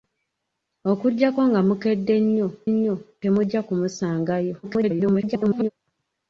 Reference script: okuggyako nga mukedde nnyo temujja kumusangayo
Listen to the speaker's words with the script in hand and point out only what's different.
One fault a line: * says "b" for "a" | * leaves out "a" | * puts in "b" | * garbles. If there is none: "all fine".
* puts in "nnyo"
* garbles